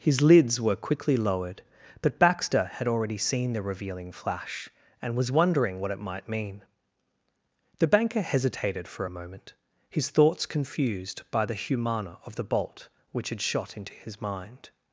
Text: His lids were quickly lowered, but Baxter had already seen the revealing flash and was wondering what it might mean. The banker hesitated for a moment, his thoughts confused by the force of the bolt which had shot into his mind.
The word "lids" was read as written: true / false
true